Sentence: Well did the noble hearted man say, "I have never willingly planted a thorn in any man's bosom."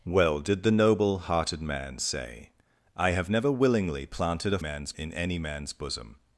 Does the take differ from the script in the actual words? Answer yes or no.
yes